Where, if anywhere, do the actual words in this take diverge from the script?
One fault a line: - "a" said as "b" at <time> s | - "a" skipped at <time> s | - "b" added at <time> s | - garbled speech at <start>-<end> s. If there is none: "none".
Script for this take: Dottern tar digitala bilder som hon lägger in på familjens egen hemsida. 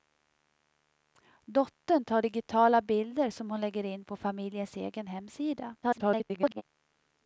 - garbled speech at 5.8-6.6 s